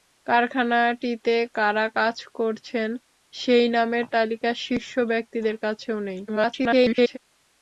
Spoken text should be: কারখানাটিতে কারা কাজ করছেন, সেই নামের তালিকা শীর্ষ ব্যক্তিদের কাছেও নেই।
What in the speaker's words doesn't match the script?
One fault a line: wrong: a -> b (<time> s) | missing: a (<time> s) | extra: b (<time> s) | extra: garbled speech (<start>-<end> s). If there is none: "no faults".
extra: garbled speech (6.3-7.2 s)